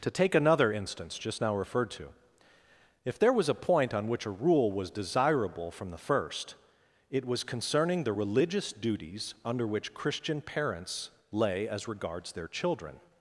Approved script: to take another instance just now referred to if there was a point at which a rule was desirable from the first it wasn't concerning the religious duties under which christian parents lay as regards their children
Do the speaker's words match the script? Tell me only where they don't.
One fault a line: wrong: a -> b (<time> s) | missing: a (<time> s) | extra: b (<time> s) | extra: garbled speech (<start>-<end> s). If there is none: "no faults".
wrong: at -> on (3.9 s)
wrong: wasn't -> was (7.2 s)